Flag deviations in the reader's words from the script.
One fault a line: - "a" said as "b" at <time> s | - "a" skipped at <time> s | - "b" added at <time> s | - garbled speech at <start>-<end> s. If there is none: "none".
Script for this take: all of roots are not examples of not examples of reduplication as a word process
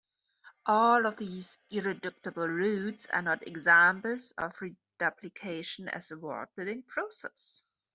- "these irreducible" added at 1.2 s
- "not examples of" skipped at 4.6 s
- "building" added at 6.6 s